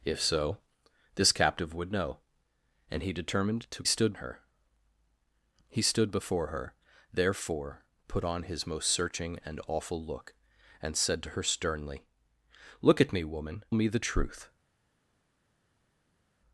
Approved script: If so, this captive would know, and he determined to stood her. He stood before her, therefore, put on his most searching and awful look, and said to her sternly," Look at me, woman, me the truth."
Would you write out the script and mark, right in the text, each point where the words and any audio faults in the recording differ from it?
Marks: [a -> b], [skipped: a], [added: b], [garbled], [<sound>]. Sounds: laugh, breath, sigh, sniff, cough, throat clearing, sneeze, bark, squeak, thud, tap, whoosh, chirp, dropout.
If so, this captive would know, and he determined to stood her. He stood before her, therefore, put on his most searching and awful look, and said to her sternly," Look at me, woman, me the truth."